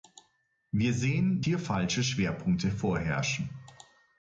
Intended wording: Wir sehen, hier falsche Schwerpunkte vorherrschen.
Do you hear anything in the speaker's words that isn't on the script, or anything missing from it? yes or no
no